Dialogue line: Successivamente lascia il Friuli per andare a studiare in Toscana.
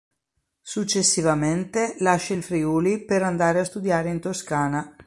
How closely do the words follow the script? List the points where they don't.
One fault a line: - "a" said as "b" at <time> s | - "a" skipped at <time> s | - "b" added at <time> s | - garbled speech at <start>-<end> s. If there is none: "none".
none